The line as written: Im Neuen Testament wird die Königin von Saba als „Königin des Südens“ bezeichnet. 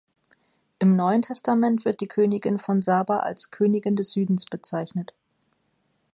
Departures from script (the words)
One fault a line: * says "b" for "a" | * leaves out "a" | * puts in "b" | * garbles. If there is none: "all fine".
all fine